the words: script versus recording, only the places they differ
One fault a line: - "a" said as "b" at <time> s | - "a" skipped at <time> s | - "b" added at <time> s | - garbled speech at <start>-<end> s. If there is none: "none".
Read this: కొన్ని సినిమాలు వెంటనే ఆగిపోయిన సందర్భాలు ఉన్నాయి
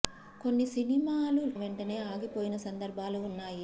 none